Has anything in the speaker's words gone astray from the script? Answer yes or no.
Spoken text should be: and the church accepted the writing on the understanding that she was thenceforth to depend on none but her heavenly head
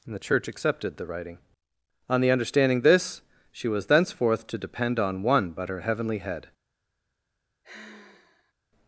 yes